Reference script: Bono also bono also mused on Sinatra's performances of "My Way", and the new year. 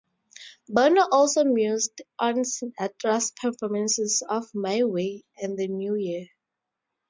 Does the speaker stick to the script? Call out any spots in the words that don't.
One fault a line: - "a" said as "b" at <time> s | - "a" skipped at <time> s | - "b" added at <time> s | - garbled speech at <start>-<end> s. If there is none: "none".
- "bono also" skipped at 1.4 s